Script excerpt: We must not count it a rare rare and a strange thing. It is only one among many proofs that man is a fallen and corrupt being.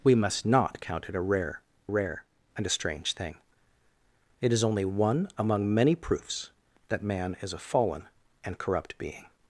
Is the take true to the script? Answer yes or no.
yes